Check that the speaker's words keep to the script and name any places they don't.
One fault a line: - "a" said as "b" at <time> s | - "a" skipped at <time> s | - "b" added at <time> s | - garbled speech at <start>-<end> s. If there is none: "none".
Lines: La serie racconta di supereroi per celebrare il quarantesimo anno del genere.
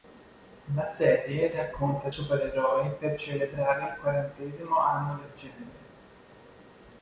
- "di" skipped at 2.1 s